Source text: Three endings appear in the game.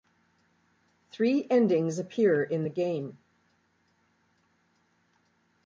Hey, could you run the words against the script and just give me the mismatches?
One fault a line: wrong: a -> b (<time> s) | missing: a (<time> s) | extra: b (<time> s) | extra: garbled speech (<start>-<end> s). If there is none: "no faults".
no faults